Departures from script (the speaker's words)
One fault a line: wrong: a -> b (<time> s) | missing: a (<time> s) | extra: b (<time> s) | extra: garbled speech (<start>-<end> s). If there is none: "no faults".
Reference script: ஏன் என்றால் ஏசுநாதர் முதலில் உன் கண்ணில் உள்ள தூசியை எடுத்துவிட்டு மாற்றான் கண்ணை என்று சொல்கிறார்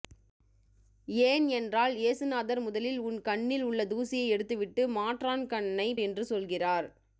no faults